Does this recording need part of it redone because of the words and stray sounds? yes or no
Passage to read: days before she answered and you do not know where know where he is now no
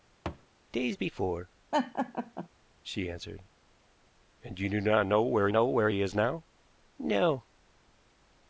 yes